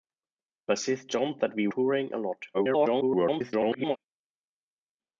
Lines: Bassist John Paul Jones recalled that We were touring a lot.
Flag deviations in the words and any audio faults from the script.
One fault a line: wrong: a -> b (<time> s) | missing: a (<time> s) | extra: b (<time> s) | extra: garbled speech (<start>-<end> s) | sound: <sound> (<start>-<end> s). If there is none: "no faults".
missing: Paul Jones recalled (1.4 s)
missing: were (1.7 s)
extra: garbled speech (2.5-4.0 s)